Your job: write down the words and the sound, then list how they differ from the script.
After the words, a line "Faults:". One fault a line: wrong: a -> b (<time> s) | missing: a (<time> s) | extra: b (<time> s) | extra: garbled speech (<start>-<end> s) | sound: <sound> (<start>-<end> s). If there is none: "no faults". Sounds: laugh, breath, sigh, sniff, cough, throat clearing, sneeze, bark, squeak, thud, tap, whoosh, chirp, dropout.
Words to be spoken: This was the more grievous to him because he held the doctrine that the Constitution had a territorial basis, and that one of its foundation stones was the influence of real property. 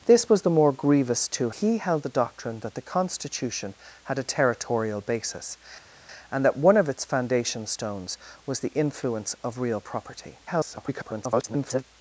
This was the more grievous to he held the doctrine that the Constitution had a territorial basis, and that one of its foundation stones was the influence of real property. [garbled]
Faults:
missing: him because (1.5 s)
extra: garbled speech (10.5-11.8 s)